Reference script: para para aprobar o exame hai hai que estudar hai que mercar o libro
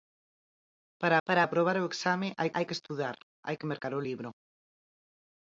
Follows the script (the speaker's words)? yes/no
yes